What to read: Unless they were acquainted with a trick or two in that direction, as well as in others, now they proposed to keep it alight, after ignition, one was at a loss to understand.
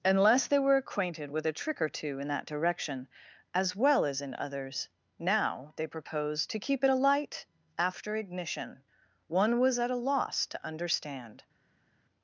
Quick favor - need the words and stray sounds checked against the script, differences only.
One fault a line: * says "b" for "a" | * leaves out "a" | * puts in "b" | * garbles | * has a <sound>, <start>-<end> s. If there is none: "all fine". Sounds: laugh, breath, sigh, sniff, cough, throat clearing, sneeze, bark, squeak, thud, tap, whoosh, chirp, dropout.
all fine